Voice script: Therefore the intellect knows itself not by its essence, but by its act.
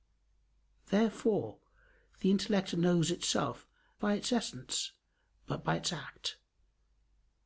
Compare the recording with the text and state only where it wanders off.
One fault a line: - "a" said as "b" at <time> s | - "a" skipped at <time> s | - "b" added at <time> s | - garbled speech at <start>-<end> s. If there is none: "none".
- "not" skipped at 3.7 s